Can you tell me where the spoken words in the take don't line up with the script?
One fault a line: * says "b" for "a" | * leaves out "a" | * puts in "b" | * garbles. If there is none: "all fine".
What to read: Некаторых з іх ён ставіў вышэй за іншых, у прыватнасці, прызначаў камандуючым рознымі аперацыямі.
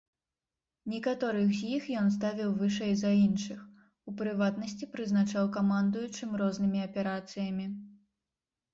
all fine